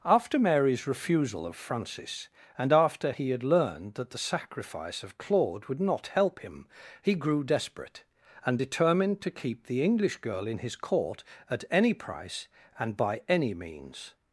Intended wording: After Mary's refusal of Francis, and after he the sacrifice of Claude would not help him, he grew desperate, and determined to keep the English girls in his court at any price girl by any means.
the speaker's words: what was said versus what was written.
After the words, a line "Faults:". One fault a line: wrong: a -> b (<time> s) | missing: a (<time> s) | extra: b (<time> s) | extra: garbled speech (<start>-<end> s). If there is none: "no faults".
After Mary's refusal of Francis, and after he had learned that the sacrifice of Claude would not help him, he grew desperate, and determined to keep the English girl in his court at any price and by any means.
Faults:
extra: had learned that (3.3 s)
wrong: girls -> girl (10.2 s)
wrong: girl -> and (12.8 s)